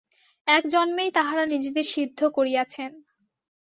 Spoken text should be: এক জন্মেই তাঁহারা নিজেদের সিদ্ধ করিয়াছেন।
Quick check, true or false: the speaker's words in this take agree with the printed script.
true